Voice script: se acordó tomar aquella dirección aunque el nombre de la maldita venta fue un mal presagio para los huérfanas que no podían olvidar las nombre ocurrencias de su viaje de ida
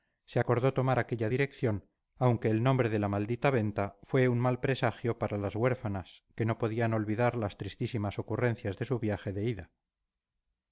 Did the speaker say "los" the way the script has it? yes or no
no